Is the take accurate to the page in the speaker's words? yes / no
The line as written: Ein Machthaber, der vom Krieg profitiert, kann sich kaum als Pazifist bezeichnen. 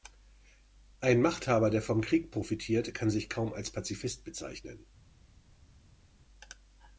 yes